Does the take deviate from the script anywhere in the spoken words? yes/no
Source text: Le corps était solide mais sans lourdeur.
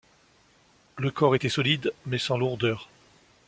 no